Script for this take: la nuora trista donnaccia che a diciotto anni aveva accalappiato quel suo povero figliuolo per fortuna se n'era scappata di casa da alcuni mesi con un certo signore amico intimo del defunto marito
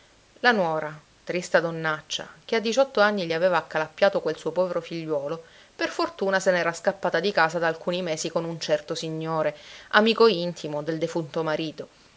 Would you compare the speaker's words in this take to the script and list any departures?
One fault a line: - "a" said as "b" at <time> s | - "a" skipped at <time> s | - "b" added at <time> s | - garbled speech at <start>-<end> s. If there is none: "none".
none